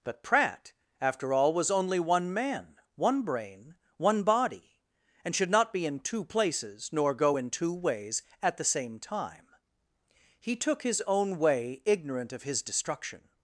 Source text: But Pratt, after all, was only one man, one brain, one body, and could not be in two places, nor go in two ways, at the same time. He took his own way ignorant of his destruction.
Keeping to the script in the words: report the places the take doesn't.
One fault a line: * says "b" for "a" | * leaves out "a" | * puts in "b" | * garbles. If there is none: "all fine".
* says "should" for "could"